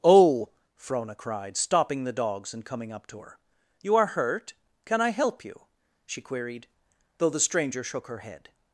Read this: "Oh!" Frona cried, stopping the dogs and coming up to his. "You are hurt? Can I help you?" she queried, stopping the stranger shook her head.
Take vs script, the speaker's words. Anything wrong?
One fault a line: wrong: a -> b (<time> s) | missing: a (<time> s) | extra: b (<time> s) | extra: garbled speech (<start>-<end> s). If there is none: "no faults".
wrong: his -> her (3.2 s)
wrong: stopping -> though (7.2 s)